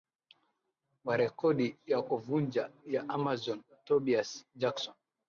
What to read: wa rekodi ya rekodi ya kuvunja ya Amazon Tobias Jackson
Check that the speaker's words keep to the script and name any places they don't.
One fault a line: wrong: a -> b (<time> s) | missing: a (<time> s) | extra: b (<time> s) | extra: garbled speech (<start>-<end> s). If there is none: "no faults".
missing: rekodi ya (2.0 s)